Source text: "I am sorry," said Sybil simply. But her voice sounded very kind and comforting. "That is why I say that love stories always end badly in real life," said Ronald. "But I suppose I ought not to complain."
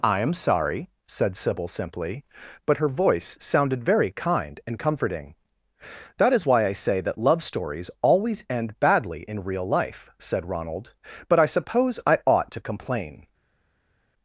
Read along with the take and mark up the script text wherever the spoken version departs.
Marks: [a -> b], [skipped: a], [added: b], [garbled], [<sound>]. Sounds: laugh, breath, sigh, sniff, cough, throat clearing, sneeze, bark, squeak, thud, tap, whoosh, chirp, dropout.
"I am sorry," said Sybil simply. But her voice sounded very kind and comforting. "That is why I say that love stories always end badly in real life," said Ronald. "But I suppose I ought [skipped: not] to complain."